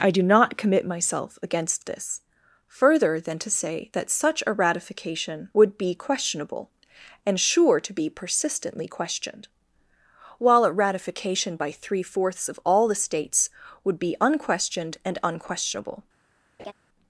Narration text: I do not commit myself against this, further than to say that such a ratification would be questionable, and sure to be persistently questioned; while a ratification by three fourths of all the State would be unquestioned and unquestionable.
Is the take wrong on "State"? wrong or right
wrong